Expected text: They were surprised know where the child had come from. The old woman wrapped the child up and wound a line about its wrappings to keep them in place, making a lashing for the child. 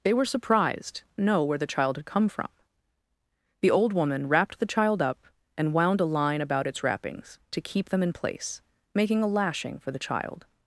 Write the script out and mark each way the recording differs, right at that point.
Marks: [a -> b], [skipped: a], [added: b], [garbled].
They were surprised know where the child had come from. The old woman wrapped the child up and wound a line about its wrappings to keep them in place, making a lashing for the child.